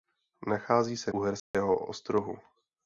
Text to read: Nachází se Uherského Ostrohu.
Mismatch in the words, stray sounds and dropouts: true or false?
true